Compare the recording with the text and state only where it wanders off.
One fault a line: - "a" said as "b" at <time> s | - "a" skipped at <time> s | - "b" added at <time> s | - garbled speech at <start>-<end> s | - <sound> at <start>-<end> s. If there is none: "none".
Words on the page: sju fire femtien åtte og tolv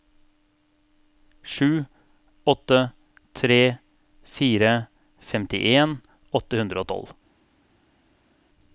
- "åtte tre" added at 2.4 s
- "hundre" added at 6.6 s